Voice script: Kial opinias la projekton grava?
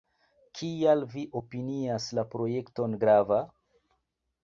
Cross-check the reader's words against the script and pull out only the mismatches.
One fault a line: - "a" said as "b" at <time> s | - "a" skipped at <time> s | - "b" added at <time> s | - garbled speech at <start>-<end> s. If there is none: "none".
- "vi" added at 1.1 s